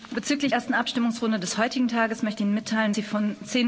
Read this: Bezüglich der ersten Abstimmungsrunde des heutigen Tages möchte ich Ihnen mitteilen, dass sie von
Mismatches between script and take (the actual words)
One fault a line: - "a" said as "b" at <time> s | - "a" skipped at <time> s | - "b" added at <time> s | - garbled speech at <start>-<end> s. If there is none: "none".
- "der" skipped at 0.5 s
- "ich" skipped at 2.4 s
- "dass" skipped at 2.9 s